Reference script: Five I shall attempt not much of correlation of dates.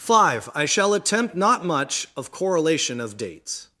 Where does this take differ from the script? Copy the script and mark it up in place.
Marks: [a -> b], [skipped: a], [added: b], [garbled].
Five I shall attempt not much of correlation of dates.